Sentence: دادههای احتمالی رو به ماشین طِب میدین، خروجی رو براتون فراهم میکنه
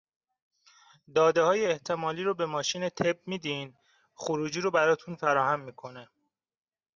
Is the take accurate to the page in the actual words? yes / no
yes